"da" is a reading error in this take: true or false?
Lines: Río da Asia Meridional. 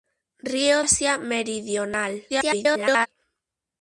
true